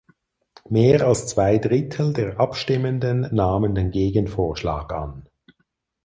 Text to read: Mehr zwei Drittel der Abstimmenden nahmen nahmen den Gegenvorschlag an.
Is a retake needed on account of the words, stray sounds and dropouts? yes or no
yes